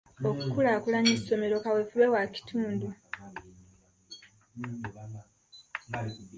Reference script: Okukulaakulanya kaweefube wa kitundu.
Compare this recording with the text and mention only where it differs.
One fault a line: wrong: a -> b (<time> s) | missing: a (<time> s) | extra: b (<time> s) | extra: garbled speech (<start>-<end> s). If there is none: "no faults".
extra: essomero (1.2 s)